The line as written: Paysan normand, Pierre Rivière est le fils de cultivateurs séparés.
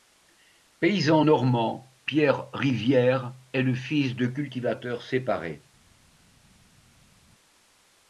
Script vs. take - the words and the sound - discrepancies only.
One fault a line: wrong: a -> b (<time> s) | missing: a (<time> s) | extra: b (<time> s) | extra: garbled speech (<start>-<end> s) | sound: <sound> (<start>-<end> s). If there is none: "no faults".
no faults